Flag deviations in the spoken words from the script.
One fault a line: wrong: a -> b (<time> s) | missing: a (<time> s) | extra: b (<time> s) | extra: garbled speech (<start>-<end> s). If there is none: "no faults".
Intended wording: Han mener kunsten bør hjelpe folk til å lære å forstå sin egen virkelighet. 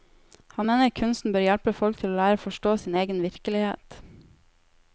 no faults